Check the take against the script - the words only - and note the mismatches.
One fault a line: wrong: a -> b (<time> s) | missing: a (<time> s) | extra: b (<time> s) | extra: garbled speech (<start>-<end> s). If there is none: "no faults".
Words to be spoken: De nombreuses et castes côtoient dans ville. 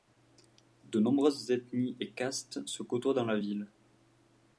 extra: ethnies (1.5 s)
extra: se (2.7 s)
extra: la (3.2 s)